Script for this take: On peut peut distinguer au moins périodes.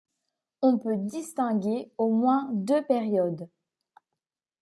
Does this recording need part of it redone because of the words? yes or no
yes